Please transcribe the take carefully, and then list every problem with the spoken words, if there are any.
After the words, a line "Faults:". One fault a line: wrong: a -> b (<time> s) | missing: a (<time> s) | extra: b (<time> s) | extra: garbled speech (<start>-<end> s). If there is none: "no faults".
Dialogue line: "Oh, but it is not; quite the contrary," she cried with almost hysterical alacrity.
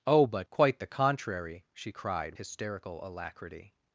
"Oh, but; quite the contrary," she cried hysterical alacrity.
Faults:
missing: it is not (0.5 s)
missing: with almost (2.4 s)